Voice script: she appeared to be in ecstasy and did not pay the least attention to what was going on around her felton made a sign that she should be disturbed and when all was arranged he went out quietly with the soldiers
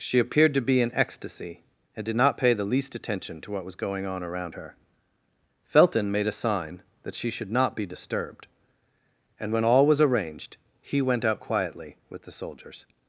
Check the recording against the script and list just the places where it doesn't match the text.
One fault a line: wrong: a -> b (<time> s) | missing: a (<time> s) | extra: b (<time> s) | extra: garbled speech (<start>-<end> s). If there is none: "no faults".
extra: not (7.5 s)